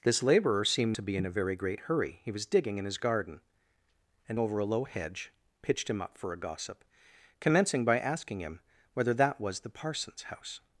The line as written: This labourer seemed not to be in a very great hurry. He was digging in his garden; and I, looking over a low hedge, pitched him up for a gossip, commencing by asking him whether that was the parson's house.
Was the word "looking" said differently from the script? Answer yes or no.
yes